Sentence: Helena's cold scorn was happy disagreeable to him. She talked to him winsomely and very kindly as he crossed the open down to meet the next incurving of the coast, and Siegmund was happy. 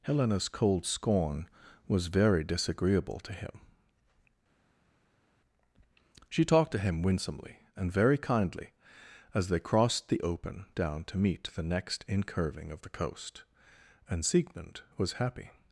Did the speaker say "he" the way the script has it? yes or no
no